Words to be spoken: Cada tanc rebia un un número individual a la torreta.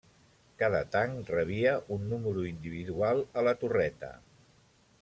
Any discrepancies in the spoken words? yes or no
yes